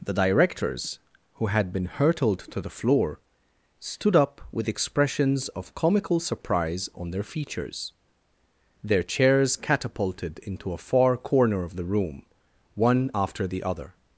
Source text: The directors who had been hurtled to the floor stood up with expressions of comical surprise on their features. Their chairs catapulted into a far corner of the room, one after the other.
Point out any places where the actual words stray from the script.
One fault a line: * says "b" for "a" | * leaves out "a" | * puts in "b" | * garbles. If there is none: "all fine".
all fine